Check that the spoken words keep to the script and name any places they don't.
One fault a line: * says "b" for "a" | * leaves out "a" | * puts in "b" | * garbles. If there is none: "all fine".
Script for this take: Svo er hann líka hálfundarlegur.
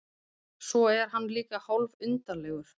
all fine